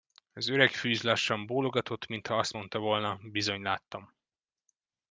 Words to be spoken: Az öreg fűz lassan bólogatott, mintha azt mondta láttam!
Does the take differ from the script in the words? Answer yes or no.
yes